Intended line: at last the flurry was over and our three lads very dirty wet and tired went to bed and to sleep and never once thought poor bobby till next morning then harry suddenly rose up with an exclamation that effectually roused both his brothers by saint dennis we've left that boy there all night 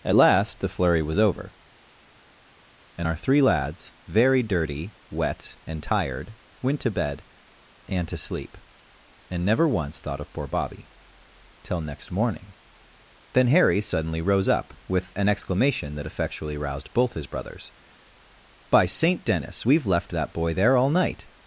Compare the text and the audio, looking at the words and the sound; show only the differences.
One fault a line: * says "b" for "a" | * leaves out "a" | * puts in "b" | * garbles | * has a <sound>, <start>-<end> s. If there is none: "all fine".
* puts in "of"